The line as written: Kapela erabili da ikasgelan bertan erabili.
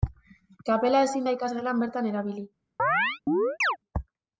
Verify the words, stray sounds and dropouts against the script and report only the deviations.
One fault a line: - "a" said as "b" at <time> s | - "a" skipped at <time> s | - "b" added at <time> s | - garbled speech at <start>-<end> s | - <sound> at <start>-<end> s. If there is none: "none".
- "erabili" said as "ezin" at 1.1 s
- chirp at 2.8-3.8 s